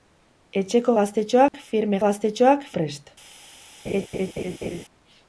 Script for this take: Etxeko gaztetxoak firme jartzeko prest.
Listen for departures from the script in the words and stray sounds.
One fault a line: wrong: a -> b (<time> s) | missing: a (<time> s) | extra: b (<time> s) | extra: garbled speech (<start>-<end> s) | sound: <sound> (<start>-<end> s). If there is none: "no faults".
sound: dropout (1.5-1.5 s)
wrong: jartzeko -> gaztetxoak (2.0 s)
sound: laugh (3.8-4.9 s)